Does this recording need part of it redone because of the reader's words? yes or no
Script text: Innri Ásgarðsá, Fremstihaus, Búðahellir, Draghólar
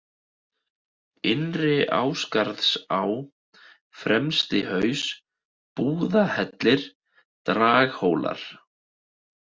no